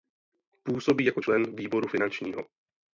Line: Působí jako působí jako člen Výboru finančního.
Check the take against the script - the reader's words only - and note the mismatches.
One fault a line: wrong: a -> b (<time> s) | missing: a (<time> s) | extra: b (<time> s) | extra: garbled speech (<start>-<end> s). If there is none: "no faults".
missing: působí jako (1.2 s)